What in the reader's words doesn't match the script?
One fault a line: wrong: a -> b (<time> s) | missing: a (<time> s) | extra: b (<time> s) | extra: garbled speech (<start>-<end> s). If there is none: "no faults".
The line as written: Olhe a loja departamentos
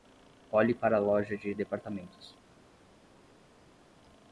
extra: para (0.7 s)
extra: de (1.4 s)